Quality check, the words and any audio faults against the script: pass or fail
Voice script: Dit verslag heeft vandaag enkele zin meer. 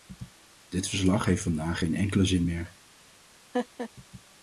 fail